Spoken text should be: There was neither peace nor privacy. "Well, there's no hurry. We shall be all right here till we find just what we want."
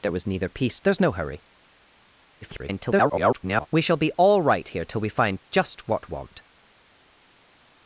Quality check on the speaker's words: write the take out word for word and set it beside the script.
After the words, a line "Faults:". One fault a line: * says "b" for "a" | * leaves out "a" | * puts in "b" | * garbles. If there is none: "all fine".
There was neither peace there's no hurry. [garbled] We shall be all right here till we find just what want."
Faults:
* leaves out "nor privacy Well"
* garbles
* leaves out "we"